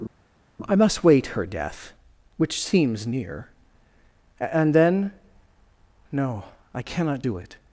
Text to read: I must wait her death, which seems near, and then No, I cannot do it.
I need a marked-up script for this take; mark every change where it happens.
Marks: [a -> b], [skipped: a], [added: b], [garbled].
I must wait her death, which seems near, and then No, I cannot do it.